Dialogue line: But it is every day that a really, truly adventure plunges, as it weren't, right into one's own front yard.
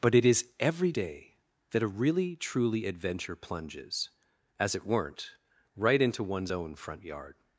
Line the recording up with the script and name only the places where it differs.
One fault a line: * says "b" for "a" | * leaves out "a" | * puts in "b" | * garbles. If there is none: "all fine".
all fine